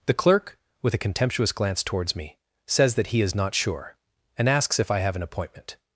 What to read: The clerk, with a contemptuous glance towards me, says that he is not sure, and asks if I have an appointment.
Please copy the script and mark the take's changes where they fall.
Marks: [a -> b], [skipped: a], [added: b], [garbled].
The clerk, with a contemptuous glance towards me, says that he is not sure, and asks if I have an appointment.